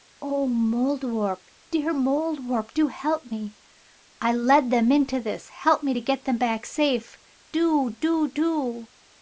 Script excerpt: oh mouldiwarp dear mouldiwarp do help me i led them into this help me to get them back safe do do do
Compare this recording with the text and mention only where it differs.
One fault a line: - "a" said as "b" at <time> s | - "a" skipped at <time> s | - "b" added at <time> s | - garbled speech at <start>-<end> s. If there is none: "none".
none